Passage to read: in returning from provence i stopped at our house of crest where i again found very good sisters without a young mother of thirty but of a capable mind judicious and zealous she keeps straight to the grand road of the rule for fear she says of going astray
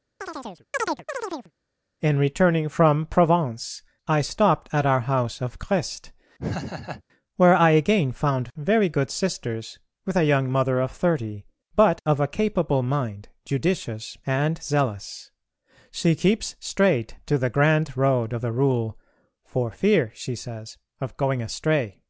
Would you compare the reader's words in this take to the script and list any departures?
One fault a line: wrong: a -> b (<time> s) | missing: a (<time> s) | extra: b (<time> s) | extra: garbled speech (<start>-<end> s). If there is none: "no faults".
wrong: without -> with (10.1 s)